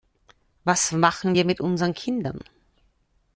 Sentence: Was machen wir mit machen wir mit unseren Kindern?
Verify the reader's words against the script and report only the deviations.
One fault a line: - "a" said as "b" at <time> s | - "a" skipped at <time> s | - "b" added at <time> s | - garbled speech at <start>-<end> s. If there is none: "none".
- "machen wir mit" skipped at 1.6 s